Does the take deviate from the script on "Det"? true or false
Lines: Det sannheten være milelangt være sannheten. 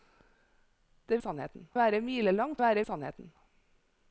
false